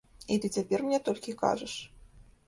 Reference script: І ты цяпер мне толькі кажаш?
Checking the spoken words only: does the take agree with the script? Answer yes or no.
yes